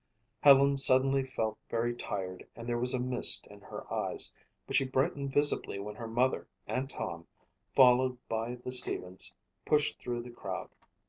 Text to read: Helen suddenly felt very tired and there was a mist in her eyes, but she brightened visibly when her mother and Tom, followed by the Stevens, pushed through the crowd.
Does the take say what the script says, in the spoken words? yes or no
yes